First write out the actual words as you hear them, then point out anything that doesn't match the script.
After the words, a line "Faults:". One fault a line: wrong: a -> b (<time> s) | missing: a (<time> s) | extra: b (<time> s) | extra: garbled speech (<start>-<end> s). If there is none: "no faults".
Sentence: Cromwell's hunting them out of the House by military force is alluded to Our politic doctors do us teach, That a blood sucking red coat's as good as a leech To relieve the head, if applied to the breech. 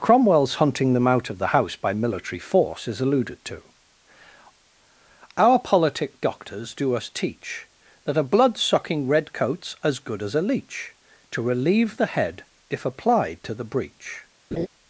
Cromwell's hunting them out of the House by military force is alluded to Our politic doctors do us teach, That a blood sucking red coat's as good as a leech To relieve the head, if applied to the breech.
Faults:
no faults